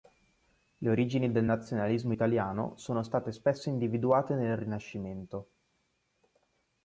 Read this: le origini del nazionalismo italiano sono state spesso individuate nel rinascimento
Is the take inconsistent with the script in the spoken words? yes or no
no